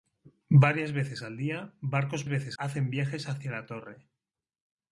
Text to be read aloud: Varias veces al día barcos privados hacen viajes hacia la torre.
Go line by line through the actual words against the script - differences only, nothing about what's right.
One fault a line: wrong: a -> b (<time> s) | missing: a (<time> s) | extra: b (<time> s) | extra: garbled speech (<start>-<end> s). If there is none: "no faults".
wrong: privados -> veces (2.3 s)